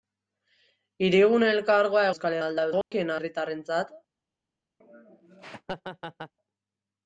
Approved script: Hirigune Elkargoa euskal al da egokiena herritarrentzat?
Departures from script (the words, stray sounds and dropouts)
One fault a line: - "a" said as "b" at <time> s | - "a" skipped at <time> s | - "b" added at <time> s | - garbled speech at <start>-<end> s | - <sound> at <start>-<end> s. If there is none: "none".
- dropout at 2.8-2.9 s
- laugh at 4.8-6.3 s